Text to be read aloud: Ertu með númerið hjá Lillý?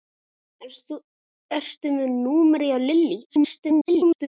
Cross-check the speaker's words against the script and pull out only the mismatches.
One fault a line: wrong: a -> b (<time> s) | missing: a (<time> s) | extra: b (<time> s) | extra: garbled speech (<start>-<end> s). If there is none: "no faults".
extra: garbled speech (3.2-4.3 s)